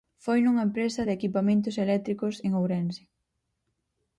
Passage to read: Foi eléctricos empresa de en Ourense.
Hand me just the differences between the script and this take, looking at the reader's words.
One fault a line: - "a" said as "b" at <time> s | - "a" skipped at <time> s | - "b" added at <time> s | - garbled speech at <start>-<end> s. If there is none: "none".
- "eléctricos" said as "nunha" at 0.4 s
- "equipamentos eléctricos" added at 1.2 s